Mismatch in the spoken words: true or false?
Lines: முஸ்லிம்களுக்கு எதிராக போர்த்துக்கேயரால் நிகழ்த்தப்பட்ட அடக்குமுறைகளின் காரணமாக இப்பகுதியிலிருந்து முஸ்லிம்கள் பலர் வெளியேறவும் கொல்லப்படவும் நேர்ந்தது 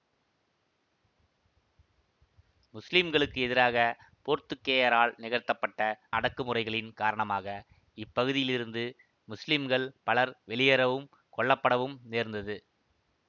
false